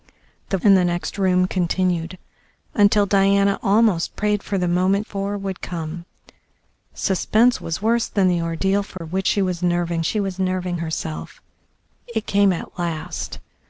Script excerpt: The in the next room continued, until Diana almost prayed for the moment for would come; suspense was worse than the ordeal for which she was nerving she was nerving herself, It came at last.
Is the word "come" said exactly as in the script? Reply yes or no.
yes